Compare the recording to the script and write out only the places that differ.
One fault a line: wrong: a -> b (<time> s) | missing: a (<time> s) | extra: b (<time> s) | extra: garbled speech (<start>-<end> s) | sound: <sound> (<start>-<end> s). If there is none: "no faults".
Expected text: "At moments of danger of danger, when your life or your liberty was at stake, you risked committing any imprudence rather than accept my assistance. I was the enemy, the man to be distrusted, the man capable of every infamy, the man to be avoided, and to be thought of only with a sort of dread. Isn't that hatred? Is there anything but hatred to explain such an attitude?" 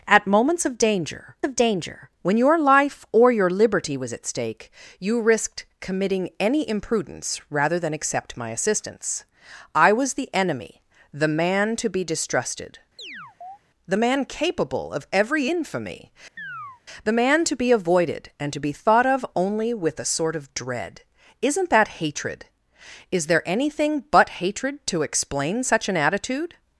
sound: chirp (13.0-13.6 s)
sound: chirp (16.4-16.8 s)